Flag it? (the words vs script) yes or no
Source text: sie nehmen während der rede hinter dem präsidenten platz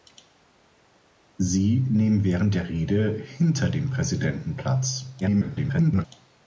yes